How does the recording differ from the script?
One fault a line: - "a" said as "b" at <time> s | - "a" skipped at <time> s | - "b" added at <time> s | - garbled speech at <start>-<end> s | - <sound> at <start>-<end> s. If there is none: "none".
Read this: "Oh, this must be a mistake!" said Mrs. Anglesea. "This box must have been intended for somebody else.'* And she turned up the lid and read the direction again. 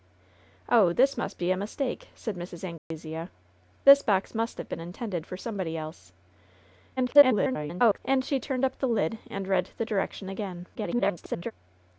- dropout at 2.8-2.9 s
- garbled speech at 7.0-8.0 s
- garbled speech at 10.7-11.5 s